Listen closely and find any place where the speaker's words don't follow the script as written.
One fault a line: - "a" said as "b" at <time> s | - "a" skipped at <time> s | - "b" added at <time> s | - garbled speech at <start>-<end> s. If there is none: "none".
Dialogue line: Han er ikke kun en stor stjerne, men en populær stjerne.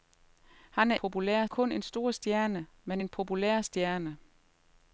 - "ikke" said as "populær" at 0.9 s